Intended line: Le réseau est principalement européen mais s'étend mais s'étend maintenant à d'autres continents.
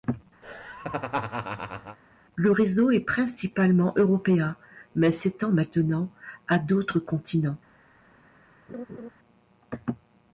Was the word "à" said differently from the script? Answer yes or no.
no